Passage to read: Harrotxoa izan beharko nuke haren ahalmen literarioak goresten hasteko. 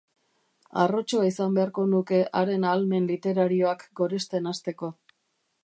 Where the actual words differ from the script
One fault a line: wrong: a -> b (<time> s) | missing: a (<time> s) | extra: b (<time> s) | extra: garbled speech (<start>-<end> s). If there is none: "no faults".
no faults